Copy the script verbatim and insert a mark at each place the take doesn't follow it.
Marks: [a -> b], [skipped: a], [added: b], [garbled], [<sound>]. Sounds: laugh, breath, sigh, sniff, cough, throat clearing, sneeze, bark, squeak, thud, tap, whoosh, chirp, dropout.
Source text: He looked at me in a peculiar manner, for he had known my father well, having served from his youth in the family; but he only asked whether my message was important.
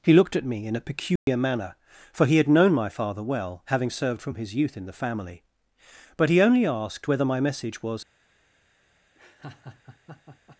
He looked at me in a peculiar [dropout] manner, for he had known my father well, having served from his youth in the family; but he only asked whether my message was [skipped: important.] [laugh]